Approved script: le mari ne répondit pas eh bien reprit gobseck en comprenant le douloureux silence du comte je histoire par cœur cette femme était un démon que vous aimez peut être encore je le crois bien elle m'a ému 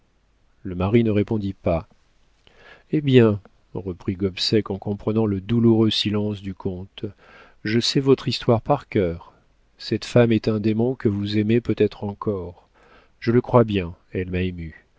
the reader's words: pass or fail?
fail